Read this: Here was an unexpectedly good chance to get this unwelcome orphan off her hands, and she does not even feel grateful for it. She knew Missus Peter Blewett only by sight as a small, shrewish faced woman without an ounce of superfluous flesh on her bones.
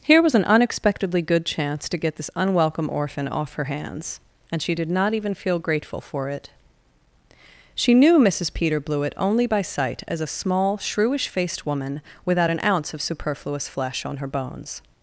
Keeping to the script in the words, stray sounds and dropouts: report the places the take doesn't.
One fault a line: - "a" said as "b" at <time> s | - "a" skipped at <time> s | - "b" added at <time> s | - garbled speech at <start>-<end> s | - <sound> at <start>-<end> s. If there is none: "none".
- "does" said as "did" at 4.7 s